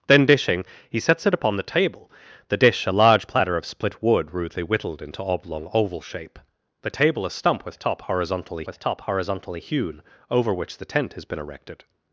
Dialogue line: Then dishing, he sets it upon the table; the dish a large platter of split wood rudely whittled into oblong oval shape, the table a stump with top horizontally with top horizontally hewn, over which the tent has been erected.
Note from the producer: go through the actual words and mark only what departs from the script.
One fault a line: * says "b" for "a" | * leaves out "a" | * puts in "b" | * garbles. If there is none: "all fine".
all fine